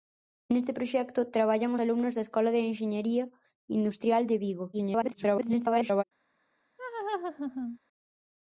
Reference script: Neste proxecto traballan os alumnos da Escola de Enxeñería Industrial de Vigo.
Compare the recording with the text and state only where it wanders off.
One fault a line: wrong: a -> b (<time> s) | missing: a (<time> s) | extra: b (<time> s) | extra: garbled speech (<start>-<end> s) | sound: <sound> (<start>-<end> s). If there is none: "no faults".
missing: os (1.8 s)
extra: garbled speech (4.7-6.0 s)
sound: laugh (6.8-7.8 s)